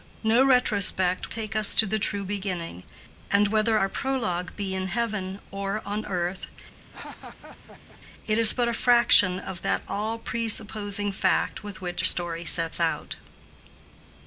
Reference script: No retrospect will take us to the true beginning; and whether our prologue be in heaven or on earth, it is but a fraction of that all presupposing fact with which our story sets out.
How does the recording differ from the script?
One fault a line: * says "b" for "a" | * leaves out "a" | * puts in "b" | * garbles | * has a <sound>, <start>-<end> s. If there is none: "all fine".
* leaves out "will"
* has a laugh, 6.8-8.0 s
* leaves out "our"